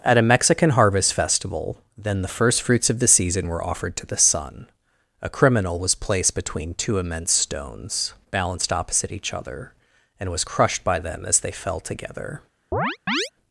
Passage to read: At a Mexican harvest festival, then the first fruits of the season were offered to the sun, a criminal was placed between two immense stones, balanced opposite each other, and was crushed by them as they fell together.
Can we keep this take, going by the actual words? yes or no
yes